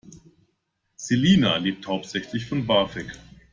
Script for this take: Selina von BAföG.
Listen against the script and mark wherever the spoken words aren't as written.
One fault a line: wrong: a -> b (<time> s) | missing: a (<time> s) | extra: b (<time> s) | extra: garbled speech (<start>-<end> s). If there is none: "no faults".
extra: lebt hauptsächlich (1.6 s)